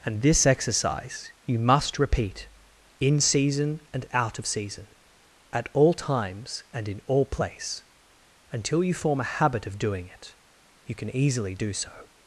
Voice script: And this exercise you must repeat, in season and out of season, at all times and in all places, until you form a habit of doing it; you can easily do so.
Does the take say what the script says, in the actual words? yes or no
no